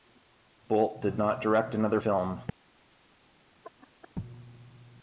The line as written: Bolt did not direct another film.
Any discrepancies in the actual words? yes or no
no